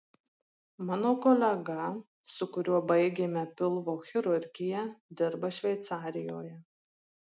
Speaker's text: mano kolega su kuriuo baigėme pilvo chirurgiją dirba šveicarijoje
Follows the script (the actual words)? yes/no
yes